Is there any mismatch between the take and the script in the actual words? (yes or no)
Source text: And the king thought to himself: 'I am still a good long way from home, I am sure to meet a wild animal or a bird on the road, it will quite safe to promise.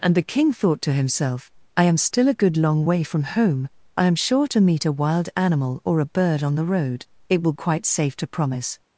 no